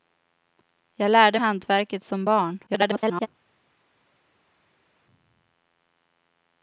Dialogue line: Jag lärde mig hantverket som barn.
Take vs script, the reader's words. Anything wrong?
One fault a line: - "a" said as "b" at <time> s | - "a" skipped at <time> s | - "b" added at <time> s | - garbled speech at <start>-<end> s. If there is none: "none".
- "mig" skipped at 1.4 s
- garbled speech at 2.7-3.3 s